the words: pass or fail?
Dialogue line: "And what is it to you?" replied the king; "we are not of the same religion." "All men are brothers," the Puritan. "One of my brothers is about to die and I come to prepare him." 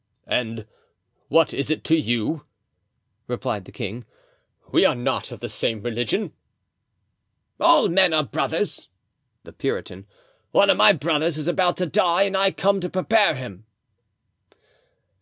pass